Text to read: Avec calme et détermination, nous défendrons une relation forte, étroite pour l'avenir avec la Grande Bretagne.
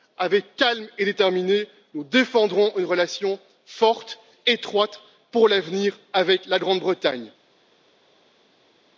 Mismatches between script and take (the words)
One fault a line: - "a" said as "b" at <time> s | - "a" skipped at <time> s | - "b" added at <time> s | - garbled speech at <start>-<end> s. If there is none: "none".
none